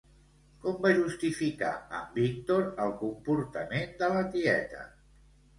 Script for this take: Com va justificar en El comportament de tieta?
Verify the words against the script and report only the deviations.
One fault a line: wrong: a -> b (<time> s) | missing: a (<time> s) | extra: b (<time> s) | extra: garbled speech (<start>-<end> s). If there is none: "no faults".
extra: Víctor (2.2 s)
extra: la (4.1 s)